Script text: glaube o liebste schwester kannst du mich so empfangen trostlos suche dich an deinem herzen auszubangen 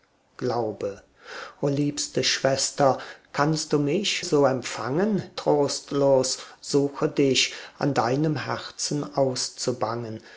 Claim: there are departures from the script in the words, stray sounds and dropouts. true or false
false